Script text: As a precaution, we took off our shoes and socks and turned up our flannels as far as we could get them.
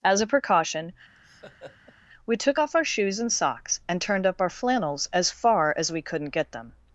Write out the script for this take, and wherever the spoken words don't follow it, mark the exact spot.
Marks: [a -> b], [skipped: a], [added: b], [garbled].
As a precaution, we took off our shoes and socks and turned up our flannels as far as we [could -> couldn't] get them.